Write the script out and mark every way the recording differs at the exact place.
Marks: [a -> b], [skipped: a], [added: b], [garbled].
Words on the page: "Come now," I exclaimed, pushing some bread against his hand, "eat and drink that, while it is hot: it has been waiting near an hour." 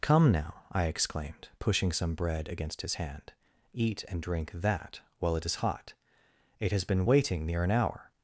"Come now," I exclaimed, pushing some bread against his hand, "eat and drink that, while it is hot: it has been waiting near an hour."